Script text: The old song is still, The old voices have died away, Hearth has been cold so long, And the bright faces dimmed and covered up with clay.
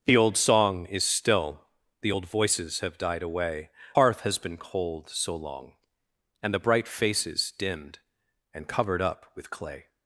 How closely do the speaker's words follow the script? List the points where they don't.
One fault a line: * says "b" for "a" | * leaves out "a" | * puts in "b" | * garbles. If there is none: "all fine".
all fine